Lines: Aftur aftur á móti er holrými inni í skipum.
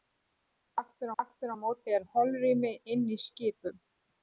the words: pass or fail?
pass